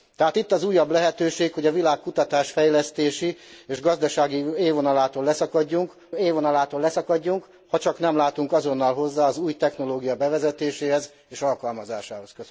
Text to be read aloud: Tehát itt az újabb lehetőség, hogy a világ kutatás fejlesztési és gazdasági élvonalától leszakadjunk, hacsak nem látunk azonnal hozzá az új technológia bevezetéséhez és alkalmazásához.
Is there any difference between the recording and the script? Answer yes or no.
yes